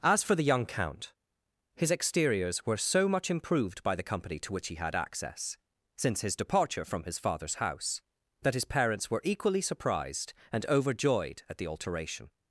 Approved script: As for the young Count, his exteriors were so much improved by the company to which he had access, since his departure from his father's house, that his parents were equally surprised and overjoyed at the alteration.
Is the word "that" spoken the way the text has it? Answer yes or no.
yes